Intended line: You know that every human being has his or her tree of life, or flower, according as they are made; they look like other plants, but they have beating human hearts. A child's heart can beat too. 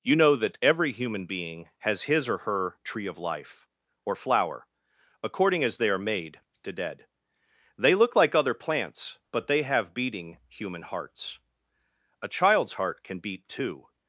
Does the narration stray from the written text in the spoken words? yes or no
yes